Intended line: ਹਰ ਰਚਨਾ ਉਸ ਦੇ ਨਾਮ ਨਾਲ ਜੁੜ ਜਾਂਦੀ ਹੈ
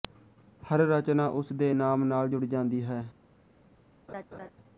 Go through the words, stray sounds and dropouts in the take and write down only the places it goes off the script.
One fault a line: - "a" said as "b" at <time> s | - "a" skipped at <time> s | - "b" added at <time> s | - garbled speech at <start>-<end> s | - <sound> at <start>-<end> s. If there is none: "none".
- laugh at 4.1-4.5 s